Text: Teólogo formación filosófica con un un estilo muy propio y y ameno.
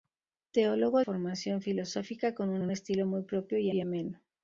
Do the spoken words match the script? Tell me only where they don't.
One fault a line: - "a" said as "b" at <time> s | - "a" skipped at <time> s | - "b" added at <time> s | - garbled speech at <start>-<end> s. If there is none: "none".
none